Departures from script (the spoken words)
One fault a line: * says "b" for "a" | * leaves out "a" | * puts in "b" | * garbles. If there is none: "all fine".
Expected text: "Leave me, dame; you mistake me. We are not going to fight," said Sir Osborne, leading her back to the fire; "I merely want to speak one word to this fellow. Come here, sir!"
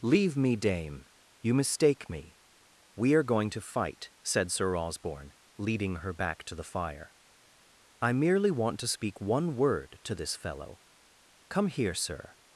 * leaves out "not"